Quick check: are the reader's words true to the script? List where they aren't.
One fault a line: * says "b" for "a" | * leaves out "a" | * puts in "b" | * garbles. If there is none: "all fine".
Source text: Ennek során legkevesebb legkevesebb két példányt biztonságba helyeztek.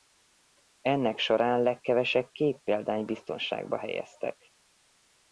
* leaves out "legkevesebb"